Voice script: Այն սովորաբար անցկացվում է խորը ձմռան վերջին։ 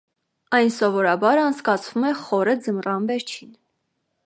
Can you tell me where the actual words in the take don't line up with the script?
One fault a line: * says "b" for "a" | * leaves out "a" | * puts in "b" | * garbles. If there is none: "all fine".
all fine